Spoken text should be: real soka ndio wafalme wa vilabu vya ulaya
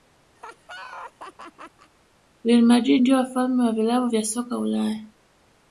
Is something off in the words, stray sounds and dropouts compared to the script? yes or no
yes